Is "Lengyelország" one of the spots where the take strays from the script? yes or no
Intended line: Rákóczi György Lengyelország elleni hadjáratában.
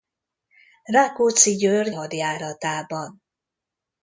yes